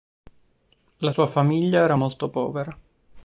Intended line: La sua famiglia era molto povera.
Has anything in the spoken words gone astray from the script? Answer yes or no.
no